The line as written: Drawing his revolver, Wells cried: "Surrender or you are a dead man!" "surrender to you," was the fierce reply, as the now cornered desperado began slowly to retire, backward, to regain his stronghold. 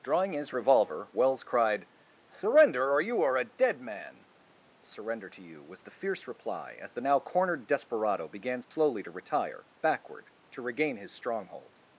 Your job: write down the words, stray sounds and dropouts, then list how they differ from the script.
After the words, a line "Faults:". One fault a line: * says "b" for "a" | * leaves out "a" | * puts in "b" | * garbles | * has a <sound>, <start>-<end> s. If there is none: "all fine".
Drawing his revolver, Wells cried: "Surrender or you are a dead man!" "surrender to you," was the fierce reply, as the now cornered desperado began slowly to retire, backward, to regain his stronghold.
Faults:
* has a dropout, 8.6-8.7 s